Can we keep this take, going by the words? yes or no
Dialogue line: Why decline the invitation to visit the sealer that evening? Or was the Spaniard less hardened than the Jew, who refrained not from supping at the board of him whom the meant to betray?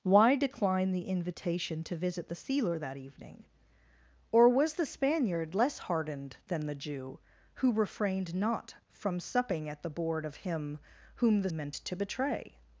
yes